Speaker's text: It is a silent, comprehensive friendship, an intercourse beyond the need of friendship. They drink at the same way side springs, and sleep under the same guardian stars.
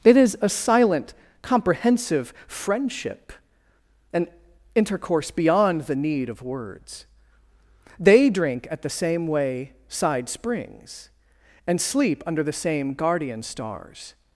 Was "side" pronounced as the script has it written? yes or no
yes